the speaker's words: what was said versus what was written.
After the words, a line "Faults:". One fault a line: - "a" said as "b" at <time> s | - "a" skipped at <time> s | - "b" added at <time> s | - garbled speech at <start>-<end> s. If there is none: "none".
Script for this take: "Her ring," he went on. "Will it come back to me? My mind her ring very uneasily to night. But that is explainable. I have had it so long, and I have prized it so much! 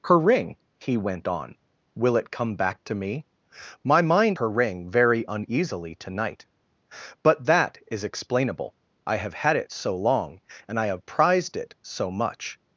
"Her ring," he went on. "Will it come back to me? My mind her ring very uneasily to night. But that is explainable. I have had it so long, and I have prized it so much!
Faults:
none